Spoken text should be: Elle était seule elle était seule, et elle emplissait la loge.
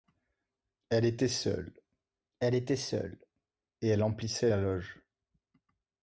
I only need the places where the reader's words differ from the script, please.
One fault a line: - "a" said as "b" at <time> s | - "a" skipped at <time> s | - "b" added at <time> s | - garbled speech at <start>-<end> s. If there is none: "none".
none